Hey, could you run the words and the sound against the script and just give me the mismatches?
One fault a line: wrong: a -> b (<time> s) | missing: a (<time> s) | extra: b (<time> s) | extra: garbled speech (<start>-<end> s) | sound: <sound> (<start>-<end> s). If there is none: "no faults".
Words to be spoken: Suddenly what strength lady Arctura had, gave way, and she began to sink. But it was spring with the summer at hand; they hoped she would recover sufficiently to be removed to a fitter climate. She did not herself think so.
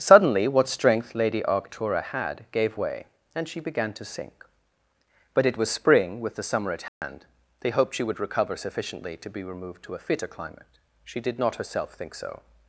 sound: dropout (6.9-7.0 s)